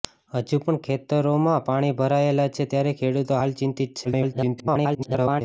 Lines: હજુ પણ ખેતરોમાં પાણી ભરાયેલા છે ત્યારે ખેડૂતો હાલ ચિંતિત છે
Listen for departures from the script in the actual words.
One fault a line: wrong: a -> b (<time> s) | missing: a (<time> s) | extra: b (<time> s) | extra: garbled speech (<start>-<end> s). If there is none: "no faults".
extra: garbled speech (4.0-5.4 s)